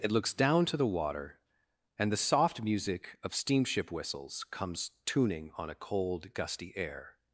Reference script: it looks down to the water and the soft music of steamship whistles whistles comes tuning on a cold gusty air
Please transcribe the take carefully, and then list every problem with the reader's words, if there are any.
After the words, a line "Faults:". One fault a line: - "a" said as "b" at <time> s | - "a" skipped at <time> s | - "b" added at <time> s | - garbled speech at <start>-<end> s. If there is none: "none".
it looks down to the water and the soft music of steamship whistles comes tuning on a cold gusty air
Faults:
- "whistles" skipped at 4.4 s